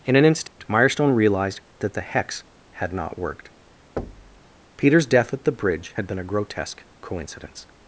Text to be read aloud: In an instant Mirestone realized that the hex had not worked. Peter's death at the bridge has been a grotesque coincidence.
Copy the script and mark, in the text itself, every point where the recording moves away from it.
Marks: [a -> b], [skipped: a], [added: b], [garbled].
In an instant Mirestone realized that the hex had not worked. Peter's death at the bridge [has -> had] been a grotesque coincidence.